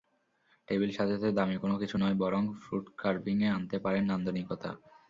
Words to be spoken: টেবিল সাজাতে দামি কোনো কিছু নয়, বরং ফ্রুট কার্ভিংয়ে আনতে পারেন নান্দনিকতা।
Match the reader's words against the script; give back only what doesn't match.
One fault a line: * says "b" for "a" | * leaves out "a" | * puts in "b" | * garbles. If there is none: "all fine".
all fine